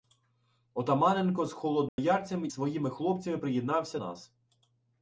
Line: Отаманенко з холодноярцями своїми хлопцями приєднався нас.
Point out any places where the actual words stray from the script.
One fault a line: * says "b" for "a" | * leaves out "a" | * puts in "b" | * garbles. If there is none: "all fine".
all fine